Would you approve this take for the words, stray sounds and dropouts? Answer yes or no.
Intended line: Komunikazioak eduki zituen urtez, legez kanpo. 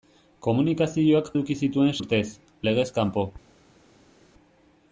yes